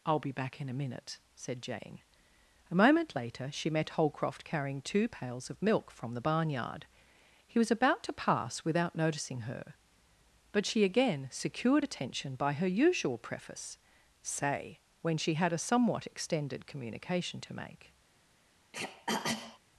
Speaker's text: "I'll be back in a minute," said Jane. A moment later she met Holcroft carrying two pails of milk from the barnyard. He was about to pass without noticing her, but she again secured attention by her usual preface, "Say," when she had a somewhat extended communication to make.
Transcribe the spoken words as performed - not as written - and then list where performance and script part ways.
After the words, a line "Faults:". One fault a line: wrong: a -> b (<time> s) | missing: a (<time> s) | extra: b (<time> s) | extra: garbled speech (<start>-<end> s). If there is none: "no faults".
"I'll be back in a minute," said Jane. A moment later she met Holcroft carrying two pails of milk from the barnyard. He was about to pass without noticing her, but she again secured attention by her usual preface, "Say," when she had a somewhat extended communication to make.
Faults:
no faults